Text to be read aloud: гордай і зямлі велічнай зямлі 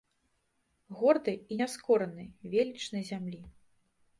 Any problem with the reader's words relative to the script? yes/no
yes